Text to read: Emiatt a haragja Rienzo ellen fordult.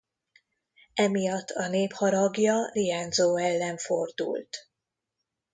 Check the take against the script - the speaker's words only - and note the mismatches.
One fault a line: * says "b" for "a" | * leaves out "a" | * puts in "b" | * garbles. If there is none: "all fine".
* puts in "nép"